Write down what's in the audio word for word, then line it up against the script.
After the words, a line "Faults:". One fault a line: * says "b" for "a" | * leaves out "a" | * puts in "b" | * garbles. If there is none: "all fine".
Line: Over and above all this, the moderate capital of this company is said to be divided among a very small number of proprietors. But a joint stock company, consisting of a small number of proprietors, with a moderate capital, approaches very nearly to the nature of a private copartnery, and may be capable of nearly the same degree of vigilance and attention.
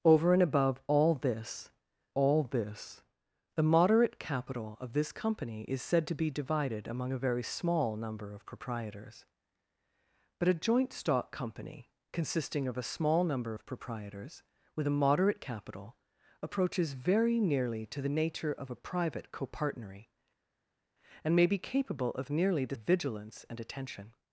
Over and above all this all this, the moderate capital of this company is said to be divided among a very small number of proprietors. But a joint stock company, consisting of a small number of proprietors, with a moderate capital, approaches very nearly to the nature of a private copartnery, and may be capable of nearly the of vigilance and attention.
Faults:
* puts in "all this"
* leaves out "same degree"